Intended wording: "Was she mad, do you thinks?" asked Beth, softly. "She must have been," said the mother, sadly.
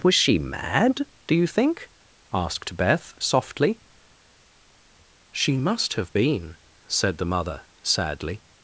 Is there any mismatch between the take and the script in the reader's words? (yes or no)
yes